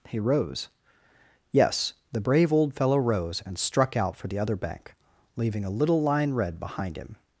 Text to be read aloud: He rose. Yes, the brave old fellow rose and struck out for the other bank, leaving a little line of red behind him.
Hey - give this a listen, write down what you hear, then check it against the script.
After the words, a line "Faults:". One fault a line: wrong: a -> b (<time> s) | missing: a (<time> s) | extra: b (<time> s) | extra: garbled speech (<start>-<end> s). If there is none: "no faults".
He rose. Yes, the brave old fellow rose and struck out for the other bank, leaving a little line red behind him.
Faults:
missing: of (6.3 s)